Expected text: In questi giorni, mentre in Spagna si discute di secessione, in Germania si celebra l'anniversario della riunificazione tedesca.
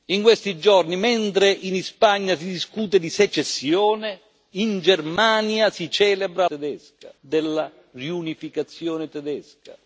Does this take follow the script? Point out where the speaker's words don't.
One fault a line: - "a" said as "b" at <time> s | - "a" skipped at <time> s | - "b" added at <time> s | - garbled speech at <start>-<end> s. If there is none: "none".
- "l'anniversario" said as "tedesca" at 6.4 s